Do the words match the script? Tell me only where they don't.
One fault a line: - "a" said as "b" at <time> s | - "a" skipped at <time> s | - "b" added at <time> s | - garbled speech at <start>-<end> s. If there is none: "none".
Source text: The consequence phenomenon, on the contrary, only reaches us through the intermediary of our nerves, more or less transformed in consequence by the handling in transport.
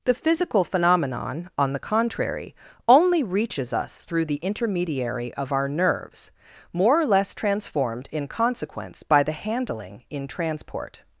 - "consequence" said as "physical" at 0.1 s